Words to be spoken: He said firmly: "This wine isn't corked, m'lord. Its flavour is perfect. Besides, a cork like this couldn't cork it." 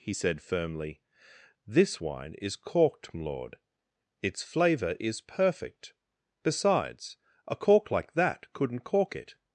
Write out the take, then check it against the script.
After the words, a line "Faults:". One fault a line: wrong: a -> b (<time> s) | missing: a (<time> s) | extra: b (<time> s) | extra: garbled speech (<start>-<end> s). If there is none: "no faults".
He said firmly: "This wine is corked, m'lord. Its flavour is perfect. Besides, a cork like that couldn't cork it."
Faults:
wrong: isn't -> is (2.4 s)
wrong: this -> that (8.1 s)